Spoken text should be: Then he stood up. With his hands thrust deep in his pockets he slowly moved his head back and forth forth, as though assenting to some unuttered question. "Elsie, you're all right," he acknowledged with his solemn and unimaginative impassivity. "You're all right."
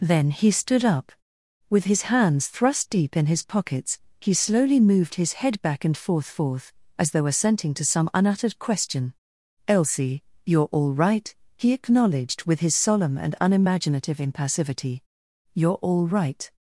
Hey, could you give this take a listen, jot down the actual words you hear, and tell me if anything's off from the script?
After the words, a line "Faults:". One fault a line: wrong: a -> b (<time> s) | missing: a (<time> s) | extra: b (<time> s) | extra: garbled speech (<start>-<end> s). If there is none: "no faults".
Then he stood up. With his hands thrust deep in his pockets he slowly moved his head back and forth forth, as though assenting to some unuttered question. "Elsie, you're all right," he acknowledged with his solemn and unimaginative impassivity. "You're all right."
Faults:
no faults